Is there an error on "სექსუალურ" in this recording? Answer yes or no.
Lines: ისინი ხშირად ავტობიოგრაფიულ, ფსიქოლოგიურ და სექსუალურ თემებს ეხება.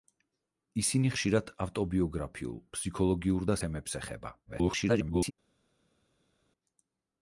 yes